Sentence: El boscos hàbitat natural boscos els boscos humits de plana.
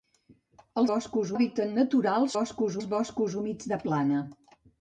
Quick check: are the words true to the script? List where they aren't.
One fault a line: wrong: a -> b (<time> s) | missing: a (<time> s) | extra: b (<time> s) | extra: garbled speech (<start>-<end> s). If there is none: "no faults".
no faults